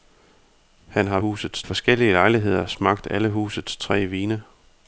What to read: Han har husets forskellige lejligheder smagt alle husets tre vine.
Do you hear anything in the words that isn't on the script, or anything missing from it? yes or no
no